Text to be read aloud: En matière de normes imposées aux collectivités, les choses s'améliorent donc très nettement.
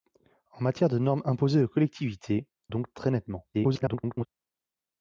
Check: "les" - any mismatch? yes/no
yes